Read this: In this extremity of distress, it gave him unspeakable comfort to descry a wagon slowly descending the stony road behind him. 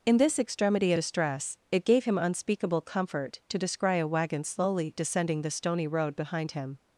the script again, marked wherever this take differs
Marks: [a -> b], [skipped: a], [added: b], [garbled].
In this extremity [skipped: of] distress, it gave him unspeakable comfort to descry a wagon slowly descending the stony road behind him.